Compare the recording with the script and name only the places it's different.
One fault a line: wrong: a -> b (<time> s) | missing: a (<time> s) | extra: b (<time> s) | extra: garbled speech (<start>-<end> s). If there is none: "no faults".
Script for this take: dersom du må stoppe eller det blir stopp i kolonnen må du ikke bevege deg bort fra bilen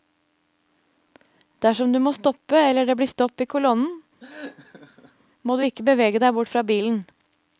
no faults